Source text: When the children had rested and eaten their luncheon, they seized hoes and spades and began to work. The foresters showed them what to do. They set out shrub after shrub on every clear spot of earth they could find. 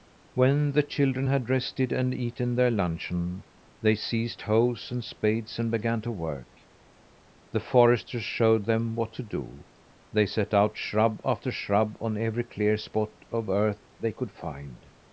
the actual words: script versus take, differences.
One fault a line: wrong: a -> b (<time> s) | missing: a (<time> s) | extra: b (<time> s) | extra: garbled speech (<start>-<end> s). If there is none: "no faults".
no faults